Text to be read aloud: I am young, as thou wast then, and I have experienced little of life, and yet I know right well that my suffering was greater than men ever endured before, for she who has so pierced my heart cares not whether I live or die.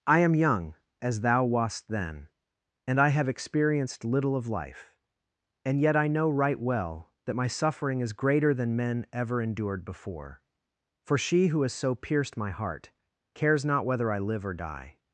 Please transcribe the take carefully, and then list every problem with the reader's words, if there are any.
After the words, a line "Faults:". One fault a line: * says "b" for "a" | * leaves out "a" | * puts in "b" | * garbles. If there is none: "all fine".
I am young, as thou wast then, and I have experienced little of life, and yet I know right well that my suffering is greater than men ever endured before, for she who has so pierced my heart cares not whether I live or die.
Faults:
* says "is" for "was"